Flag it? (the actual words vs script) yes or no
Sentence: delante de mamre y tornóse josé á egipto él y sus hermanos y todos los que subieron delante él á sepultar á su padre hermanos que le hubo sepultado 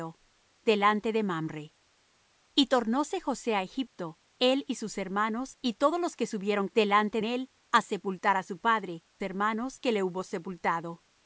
no